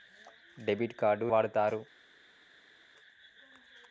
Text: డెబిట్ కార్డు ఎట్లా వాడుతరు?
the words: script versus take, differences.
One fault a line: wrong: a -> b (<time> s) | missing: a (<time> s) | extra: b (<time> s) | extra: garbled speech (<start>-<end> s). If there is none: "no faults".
missing: ఎట్లా (1.3 s)